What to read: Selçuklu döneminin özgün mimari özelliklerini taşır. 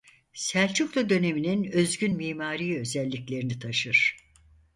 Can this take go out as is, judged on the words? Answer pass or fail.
pass